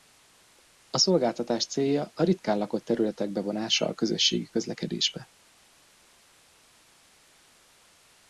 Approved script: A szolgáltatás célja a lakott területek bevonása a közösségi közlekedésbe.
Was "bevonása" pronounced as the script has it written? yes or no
yes